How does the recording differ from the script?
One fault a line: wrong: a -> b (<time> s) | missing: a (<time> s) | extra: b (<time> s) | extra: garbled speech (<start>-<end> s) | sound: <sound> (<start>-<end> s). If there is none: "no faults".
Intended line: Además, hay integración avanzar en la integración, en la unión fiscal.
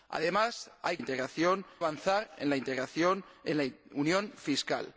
no faults